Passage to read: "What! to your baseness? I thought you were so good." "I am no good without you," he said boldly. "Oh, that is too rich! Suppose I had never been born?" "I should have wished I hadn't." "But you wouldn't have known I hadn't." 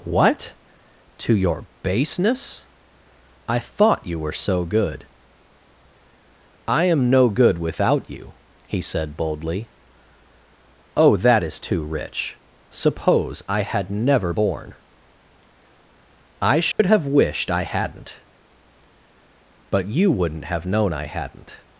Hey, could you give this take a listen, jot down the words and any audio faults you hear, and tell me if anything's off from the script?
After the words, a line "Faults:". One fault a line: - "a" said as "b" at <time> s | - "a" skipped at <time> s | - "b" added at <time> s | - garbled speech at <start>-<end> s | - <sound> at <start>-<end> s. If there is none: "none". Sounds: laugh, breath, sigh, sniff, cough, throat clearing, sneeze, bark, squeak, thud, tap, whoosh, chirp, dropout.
"What! to your baseness? I thought you were so good." "I am no good without you," he said boldly. "Oh, that is too rich! Suppose I had never born?" "I should have wished I hadn't." "But you wouldn't have known I hadn't."
Faults:
- "been" skipped at 14.3 s
- dropout at 16.7-16.8 s